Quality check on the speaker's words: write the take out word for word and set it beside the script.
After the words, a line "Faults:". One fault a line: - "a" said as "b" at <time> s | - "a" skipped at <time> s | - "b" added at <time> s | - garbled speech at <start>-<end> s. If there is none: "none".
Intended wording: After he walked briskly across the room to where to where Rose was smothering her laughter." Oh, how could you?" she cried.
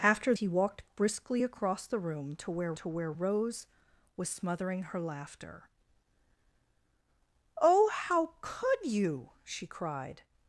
After he walked briskly across the room to where to where Rose was smothering her laughter." Oh, how could you?" she cried.
Faults:
none